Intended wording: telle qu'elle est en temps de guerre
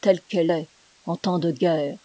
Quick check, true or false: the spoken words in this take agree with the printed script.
true